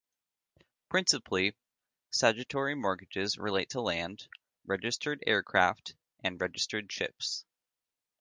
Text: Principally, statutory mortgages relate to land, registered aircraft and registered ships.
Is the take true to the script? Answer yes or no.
yes